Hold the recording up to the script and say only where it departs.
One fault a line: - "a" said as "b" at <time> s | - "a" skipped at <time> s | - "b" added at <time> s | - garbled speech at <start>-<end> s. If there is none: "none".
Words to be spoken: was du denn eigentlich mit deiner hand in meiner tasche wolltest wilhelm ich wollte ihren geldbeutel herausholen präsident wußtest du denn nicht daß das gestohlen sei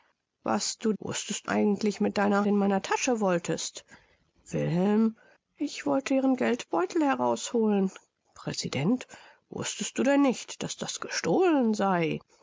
- "denn" said as "wußtest" at 1.0 s
- "hand" skipped at 2.5 s